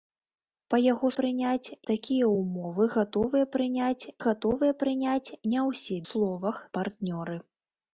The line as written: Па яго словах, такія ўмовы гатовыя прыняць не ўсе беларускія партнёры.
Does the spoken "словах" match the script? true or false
false